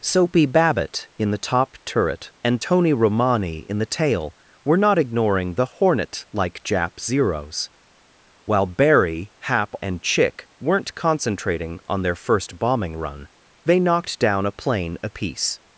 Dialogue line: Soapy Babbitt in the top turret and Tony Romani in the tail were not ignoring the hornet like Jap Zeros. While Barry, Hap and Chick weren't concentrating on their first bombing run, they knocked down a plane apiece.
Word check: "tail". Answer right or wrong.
right